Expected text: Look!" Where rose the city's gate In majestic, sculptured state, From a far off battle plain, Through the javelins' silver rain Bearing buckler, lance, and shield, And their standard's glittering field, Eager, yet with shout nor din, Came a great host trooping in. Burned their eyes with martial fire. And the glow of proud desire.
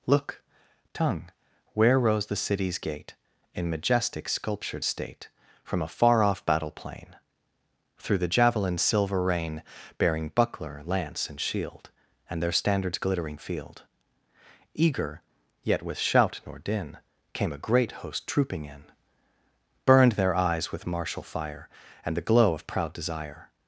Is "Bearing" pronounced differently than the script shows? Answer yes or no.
no